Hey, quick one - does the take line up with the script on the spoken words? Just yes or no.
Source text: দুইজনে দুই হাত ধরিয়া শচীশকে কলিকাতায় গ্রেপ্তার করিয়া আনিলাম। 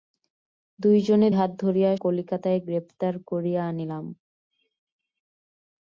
no